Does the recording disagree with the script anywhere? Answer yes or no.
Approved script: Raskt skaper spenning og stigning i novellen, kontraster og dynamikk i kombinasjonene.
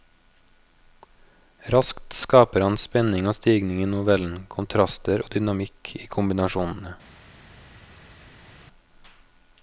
yes